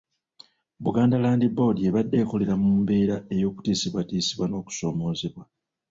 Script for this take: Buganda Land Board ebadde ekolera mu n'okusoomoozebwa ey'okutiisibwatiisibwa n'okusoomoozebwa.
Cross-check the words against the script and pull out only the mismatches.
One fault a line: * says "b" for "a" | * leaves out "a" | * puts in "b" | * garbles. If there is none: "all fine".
* says "mbeera" for "n'okusoomoozebwa"